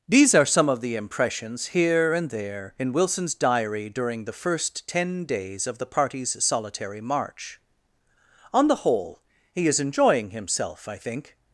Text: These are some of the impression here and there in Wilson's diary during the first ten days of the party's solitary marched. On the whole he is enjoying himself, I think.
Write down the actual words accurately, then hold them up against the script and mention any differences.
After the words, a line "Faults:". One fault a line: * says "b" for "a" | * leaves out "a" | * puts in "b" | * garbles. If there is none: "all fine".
These are some of the impressions here and there in Wilson's diary during the first ten days of the party's solitary march. On the whole he is enjoying himself, I think.
Faults:
* says "impressions" for "impression"
* says "march" for "marched"